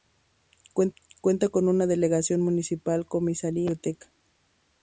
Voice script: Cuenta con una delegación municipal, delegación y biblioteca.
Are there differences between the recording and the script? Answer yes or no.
yes